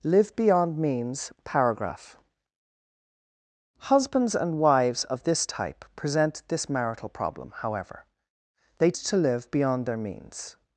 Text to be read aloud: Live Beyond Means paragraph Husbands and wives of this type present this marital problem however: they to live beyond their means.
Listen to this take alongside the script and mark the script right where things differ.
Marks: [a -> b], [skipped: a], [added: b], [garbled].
Live Beyond Means paragraph Husbands and wives of this type present this marital problem however: they to live beyond their means.